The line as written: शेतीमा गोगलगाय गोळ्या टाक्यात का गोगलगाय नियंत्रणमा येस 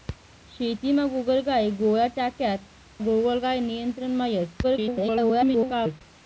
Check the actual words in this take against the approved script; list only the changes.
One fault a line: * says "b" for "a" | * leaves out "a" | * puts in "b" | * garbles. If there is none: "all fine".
* leaves out "का"
* garbles